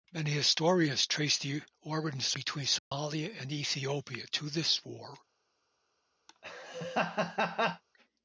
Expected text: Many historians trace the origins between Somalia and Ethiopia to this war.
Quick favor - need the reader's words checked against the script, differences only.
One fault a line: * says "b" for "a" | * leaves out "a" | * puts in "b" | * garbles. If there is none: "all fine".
all fine